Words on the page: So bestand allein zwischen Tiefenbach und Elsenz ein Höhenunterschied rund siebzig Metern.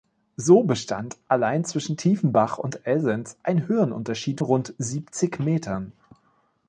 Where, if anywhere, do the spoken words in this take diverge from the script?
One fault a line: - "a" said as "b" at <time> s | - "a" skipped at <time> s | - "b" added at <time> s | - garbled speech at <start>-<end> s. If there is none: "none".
none